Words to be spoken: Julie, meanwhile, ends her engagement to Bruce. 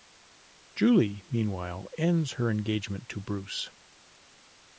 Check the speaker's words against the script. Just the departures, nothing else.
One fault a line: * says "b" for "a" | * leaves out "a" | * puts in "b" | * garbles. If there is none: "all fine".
all fine